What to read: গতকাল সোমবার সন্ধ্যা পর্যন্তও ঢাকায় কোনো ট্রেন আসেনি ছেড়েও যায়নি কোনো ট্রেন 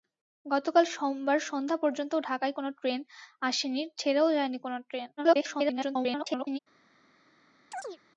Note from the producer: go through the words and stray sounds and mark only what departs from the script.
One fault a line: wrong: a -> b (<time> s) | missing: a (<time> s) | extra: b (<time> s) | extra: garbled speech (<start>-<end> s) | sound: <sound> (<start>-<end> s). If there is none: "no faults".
extra: garbled speech (5.2-6.6 s)
sound: chirp (7.7-8.0 s)